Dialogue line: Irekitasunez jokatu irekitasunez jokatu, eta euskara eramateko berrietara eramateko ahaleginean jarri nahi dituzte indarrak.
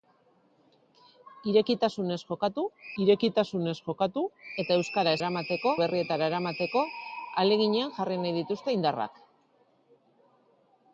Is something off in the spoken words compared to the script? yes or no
no